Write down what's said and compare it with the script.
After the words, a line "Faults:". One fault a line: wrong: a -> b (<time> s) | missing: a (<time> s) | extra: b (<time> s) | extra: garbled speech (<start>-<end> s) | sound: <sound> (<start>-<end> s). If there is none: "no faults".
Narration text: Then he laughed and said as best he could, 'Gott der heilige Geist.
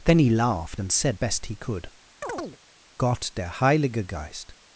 Then he laughed and said best he could, 'Gott der heilige Geist.
Faults:
missing: as (1.2 s)
sound: chirp (2.2-2.6 s)